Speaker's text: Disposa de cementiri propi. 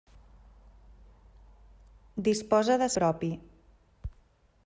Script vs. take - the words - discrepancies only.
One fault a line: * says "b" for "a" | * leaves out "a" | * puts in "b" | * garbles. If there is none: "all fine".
* leaves out "cementiri"